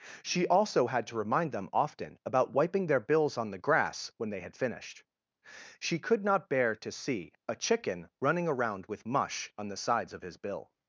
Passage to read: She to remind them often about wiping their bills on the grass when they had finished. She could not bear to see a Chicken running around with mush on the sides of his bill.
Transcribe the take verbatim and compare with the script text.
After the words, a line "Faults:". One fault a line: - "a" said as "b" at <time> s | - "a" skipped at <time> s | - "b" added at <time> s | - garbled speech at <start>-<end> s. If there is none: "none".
She also had to remind them often about wiping their bills on the grass when they had finished. She could not bear to see a Chicken running around with mush on the sides of his bill.
Faults:
- "also had" added at 0.5 s